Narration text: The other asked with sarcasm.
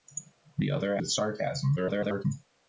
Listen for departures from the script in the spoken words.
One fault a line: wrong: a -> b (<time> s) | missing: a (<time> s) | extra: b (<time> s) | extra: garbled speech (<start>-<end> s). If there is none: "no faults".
missing: asked (1.0 s)
extra: garbled speech (1.8-2.3 s)